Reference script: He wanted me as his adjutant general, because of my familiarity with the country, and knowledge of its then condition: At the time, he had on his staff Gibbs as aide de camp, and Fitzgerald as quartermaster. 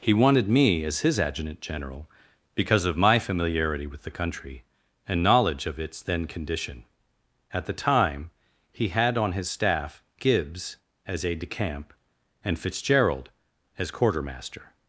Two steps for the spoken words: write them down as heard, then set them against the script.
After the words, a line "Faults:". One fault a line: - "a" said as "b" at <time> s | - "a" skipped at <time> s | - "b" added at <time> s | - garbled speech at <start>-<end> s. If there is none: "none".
He wanted me as his adjutant general, because of my familiarity with the country, and knowledge of its then condition: At the time, he had on his staff Gibbs as aide de camp, and Fitzgerald as quartermaster.
Faults:
none